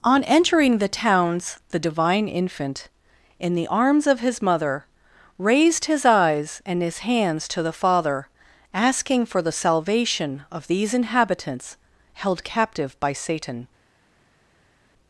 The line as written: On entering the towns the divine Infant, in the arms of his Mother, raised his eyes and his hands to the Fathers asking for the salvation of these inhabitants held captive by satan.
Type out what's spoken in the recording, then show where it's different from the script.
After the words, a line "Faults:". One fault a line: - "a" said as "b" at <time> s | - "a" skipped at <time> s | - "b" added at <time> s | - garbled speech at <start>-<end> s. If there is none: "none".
On entering the towns the divine Infant, in the arms of his Mother, raised his eyes and his hands to the Father asking for the salvation of these inhabitants held captive by satan.
Faults:
- "Fathers" said as "Father" at 7.7 s